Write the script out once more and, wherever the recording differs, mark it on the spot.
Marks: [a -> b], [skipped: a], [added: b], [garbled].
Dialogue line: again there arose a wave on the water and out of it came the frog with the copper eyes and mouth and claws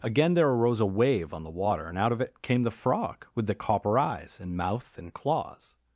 again there arose a wave on the water and out of it came the frog with the copper eyes and mouth and claws